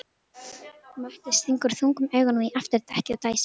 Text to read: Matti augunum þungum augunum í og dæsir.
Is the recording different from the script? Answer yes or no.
yes